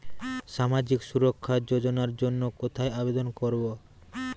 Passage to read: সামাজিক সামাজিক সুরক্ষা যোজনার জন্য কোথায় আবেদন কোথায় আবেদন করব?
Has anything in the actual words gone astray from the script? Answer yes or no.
yes